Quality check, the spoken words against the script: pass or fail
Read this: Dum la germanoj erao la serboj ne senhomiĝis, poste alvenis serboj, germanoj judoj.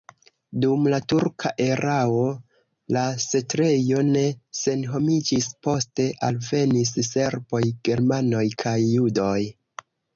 fail